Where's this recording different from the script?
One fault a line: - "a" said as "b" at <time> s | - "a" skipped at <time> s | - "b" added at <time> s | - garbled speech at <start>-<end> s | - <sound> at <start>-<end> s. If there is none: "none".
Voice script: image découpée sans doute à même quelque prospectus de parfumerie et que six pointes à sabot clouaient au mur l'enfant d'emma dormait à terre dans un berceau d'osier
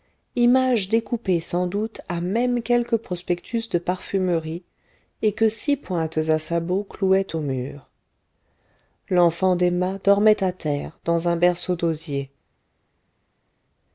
none